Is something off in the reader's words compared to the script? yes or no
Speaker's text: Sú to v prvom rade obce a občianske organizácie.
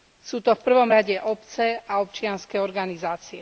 no